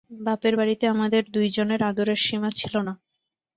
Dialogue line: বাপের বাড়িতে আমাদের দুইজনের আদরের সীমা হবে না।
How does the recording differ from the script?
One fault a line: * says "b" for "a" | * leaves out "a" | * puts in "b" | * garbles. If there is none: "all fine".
* says "ছিল" for "হবে"